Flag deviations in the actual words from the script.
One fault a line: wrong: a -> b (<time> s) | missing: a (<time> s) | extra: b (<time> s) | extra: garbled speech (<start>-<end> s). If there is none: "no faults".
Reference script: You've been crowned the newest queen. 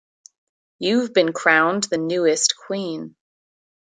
no faults